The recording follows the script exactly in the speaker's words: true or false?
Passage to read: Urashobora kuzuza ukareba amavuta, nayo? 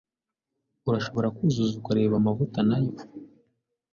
true